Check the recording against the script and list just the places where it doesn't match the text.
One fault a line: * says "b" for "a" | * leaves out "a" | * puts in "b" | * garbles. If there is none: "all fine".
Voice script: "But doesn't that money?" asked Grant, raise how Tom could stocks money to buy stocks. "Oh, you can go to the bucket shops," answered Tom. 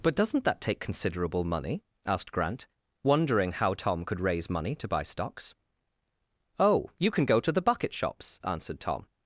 * puts in "take considerable"
* says "wondering" for "raise"
* says "raise" for "stocks"